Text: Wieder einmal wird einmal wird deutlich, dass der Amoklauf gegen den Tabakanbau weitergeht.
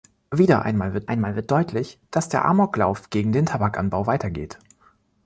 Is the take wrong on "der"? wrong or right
right